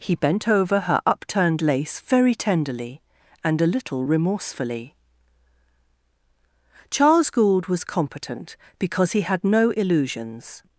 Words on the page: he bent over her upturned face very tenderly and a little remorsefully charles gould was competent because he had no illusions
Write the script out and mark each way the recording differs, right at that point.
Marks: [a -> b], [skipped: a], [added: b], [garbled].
he bent over her upturned [face -> lace] very tenderly and a little remorsefully charles gould was competent because he had no illusions